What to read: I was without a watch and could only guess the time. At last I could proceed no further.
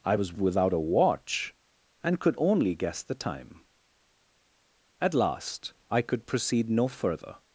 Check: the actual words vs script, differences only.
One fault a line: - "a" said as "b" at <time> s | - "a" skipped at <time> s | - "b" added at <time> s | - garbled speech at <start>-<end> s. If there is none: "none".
none